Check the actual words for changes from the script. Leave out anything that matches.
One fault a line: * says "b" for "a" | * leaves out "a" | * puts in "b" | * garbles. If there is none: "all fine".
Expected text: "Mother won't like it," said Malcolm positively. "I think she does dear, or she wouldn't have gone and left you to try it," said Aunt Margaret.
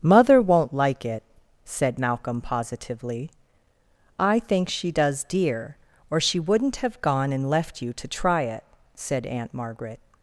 all fine